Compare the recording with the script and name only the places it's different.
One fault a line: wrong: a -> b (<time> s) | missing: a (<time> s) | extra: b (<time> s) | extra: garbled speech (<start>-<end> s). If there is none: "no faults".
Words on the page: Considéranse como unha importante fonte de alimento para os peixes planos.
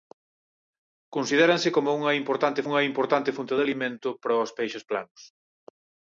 extra: unha importante (2.7 s)